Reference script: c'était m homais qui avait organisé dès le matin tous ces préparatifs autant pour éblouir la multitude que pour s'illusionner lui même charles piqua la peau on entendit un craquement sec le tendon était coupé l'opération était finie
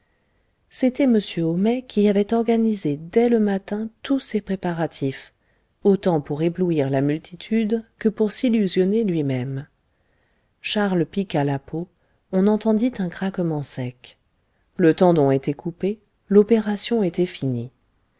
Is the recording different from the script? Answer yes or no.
no